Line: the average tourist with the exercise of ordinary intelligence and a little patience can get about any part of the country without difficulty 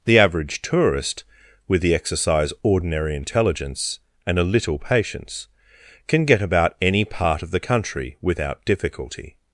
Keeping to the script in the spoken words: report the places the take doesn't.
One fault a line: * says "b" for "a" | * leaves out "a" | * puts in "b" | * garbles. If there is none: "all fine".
* leaves out "of"